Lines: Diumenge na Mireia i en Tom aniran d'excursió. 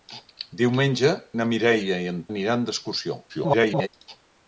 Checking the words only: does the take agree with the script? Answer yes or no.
no